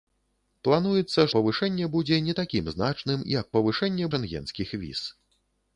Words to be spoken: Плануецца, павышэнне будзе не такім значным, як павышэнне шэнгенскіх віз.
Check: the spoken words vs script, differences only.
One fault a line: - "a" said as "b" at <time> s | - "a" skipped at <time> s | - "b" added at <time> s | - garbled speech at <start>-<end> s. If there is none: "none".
none